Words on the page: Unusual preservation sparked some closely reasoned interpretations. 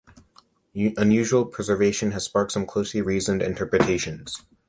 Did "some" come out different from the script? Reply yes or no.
no